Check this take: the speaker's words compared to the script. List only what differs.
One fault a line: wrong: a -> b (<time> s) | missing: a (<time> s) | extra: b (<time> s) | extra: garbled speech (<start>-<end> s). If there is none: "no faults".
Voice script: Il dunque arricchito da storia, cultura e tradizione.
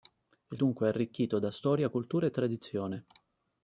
no faults